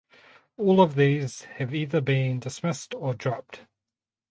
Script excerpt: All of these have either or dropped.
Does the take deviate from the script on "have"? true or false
false